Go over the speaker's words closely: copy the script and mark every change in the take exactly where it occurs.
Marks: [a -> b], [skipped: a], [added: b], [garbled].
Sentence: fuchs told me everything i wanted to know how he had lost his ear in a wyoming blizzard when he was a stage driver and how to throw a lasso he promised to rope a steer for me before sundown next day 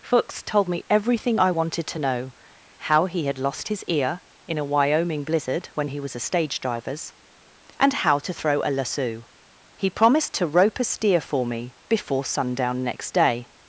fuchs told me everything i wanted to know how he had lost his ear in a wyoming blizzard when he was a stage [driver -> drivers] and how to throw a lasso he promised to rope a steer for me before sundown next day